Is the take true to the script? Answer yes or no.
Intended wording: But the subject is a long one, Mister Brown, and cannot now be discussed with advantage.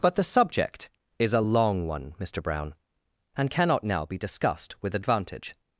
yes